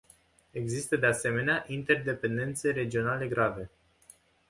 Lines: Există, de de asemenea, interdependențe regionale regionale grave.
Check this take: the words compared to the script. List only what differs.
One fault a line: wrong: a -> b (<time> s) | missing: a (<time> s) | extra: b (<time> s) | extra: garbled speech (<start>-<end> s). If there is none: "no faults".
missing: de (1.1 s)
missing: regionale (3.3 s)